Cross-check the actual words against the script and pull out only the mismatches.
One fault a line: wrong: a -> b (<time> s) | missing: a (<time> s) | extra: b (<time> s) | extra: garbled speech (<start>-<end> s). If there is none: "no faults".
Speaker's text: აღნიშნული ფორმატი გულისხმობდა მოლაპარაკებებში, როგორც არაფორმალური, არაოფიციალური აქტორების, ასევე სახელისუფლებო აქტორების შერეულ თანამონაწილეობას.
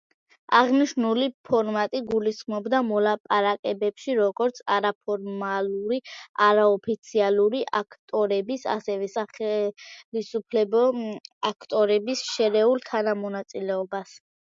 no faults